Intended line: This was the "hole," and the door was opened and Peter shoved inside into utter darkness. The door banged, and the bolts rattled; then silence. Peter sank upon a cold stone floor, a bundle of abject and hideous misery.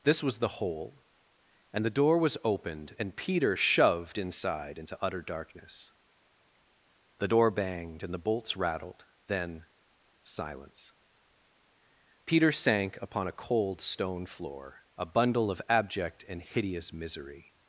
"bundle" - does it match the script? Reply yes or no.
yes